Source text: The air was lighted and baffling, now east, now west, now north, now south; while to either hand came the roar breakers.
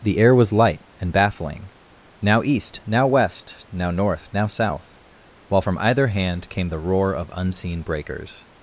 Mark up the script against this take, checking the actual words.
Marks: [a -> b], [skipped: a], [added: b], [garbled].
The air was [lighted -> light] and baffling, now east, now west, now north, now south; while [to -> from] either hand came the roar [added: of unseen] breakers.